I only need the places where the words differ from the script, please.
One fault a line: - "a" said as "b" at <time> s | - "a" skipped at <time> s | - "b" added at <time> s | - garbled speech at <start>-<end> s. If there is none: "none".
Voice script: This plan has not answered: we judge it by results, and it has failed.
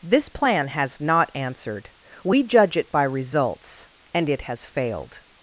none